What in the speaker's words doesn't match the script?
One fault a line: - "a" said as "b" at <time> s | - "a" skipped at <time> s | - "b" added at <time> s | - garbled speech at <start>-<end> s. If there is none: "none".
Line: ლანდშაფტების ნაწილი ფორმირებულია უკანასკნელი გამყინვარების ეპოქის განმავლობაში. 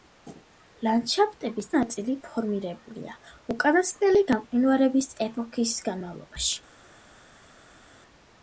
none